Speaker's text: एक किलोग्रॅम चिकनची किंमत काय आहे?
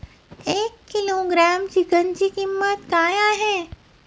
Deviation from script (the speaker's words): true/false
false